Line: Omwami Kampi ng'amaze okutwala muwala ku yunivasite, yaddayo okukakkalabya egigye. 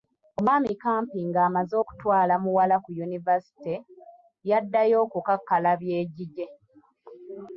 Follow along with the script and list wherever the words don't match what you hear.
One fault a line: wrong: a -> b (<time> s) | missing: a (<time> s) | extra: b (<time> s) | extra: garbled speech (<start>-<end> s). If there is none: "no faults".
no faults